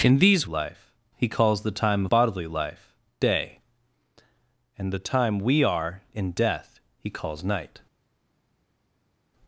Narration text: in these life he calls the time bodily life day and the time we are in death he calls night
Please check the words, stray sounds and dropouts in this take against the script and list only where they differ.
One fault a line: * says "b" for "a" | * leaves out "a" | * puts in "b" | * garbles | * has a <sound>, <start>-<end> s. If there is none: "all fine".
all fine